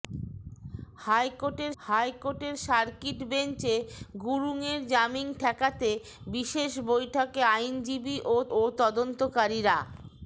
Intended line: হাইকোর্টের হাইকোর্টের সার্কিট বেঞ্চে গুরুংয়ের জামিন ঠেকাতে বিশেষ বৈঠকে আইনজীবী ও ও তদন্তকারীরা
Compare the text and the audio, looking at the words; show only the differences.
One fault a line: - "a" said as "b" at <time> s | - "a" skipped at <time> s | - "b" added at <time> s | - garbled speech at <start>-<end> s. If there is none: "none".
none